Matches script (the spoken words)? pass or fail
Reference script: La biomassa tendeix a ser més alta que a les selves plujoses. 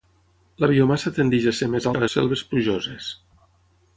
fail